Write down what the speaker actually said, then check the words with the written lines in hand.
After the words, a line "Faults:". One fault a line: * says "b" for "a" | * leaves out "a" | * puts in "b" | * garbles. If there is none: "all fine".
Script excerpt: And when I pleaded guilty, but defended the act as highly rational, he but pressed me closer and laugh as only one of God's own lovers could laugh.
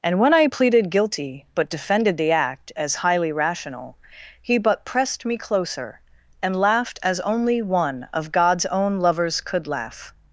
And when I pleaded guilty, but defended the act as highly rational, he but pressed me closer and laughed as only one of God's own lovers could laugh.
Faults:
* says "laughed" for "laugh"